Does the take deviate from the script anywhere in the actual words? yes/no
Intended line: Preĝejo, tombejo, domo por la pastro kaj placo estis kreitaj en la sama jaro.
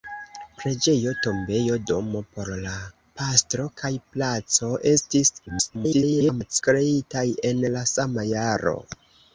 yes